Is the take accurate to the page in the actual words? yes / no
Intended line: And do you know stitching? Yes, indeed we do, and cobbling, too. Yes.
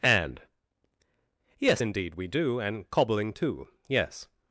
no